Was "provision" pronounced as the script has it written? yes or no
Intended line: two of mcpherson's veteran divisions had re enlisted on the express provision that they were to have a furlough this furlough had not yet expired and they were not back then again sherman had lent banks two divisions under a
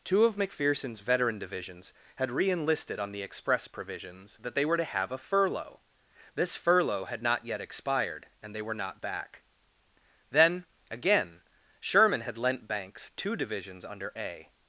no